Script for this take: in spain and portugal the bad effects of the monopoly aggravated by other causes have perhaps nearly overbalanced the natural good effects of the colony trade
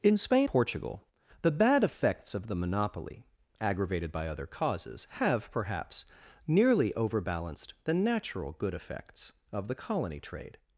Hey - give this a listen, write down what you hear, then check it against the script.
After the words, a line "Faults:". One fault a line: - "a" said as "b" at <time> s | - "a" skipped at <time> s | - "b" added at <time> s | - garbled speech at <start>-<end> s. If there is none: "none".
in spain portugal the bad effects of the monopoly aggravated by other causes have perhaps nearly overbalanced the natural good effects of the colony trade
Faults:
- "and" skipped at 0.5 s